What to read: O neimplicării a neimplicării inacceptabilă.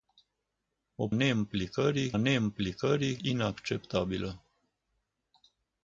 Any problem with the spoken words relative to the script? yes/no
no